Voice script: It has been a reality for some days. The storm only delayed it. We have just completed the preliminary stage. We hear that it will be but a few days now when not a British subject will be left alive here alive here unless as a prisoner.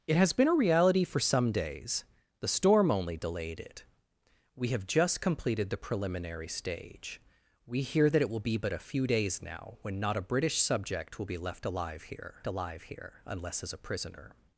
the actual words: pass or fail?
pass